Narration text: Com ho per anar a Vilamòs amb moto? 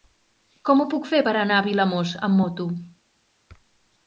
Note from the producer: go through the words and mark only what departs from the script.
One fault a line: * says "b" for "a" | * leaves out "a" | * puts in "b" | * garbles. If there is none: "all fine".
* puts in "puc fer"